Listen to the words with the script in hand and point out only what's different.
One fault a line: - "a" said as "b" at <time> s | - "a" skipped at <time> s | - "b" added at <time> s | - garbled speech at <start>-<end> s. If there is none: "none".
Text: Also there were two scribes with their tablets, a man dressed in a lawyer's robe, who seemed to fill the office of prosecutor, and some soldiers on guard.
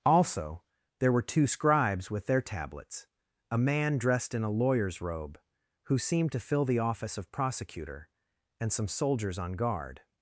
none